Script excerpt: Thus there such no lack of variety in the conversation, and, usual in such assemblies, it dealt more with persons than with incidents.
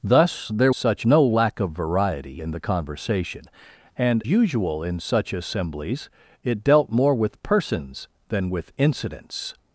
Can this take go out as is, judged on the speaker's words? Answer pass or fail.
pass